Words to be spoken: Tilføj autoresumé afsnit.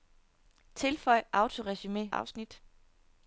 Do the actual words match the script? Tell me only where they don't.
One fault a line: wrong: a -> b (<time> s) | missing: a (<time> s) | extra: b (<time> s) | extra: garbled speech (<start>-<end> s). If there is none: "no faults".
no faults